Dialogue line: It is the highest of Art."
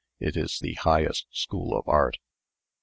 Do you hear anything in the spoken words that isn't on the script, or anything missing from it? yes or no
yes